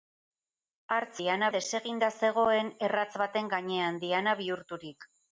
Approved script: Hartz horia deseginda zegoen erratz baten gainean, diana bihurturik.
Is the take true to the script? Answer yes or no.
no